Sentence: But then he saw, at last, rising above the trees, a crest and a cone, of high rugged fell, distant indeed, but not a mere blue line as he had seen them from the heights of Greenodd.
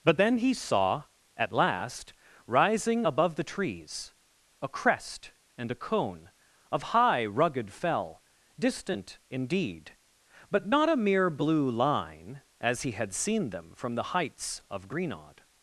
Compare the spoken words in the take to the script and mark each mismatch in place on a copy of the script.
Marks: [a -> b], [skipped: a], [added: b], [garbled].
But then he saw, at last, rising above the trees, a crest and a cone, of high rugged fell, distant indeed, but not a mere blue line as he had seen them from the heights of Greenodd.